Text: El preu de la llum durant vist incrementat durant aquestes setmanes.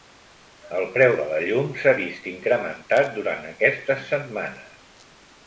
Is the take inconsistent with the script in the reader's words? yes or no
yes